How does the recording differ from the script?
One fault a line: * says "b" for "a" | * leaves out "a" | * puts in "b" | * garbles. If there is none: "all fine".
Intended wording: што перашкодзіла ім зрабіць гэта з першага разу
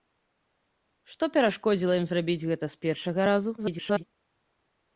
* garbles